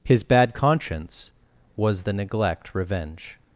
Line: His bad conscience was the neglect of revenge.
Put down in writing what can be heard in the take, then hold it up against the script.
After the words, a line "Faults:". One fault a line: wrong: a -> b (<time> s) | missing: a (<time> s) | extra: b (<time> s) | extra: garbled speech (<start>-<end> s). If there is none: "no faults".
His bad conscience was the neglect revenge.
Faults:
missing: of (2.7 s)